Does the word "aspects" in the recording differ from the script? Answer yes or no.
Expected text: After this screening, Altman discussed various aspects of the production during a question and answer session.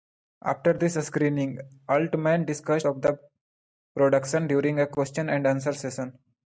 yes